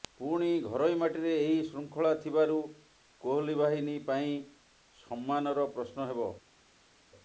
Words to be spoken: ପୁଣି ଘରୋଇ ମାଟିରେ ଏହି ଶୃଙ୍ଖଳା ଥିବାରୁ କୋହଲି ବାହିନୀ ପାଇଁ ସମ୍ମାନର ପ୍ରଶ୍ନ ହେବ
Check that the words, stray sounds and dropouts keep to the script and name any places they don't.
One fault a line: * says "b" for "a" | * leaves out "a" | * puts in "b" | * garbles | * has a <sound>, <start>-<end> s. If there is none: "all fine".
all fine